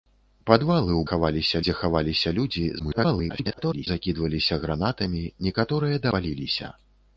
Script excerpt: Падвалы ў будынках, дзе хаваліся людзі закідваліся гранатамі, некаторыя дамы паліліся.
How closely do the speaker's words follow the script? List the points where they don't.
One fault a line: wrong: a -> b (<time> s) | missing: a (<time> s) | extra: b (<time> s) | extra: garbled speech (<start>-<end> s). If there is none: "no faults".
wrong: будынках -> хаваліся (1.1 s)
extra: garbled speech (2.8-3.9 s)
missing: дамы (6.0 s)